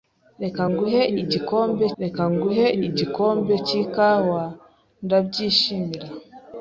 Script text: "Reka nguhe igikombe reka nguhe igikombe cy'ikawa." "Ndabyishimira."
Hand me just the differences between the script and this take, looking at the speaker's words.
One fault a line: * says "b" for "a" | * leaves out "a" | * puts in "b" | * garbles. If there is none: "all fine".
all fine